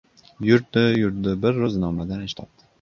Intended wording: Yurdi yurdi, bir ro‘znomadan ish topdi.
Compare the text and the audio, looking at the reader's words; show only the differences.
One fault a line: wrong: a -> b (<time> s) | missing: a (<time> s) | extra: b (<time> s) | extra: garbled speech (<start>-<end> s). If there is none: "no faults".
no faults